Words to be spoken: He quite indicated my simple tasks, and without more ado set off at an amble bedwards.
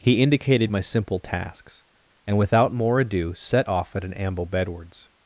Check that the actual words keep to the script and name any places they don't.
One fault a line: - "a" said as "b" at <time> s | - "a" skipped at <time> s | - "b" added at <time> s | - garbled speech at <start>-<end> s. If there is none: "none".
- "quite" skipped at 0.2 s